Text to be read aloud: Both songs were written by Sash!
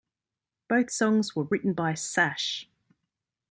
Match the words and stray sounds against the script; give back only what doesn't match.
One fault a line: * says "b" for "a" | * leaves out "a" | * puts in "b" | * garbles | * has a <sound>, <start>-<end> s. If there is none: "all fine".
all fine